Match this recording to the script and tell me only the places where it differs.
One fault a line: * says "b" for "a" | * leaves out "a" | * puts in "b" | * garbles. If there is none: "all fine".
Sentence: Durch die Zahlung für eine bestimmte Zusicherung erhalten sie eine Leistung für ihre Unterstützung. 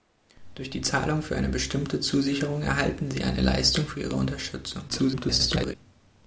* garbles